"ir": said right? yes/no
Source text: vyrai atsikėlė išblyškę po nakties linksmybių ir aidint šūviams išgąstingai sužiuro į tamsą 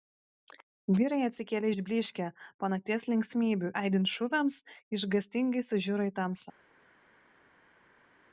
no